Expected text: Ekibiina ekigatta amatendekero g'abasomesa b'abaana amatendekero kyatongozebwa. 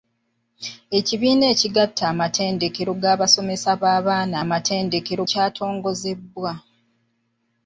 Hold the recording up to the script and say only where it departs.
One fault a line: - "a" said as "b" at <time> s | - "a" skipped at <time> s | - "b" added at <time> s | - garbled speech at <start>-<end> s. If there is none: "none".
none